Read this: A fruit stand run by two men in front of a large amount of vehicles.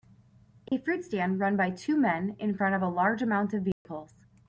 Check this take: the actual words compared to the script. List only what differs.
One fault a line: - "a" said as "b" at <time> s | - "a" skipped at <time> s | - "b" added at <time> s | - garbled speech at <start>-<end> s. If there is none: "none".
none